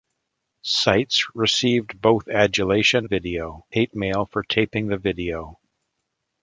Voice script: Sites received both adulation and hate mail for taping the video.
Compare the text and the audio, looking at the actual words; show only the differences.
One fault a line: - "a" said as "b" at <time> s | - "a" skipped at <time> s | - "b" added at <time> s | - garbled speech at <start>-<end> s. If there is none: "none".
- "and" said as "video" at 3.0 s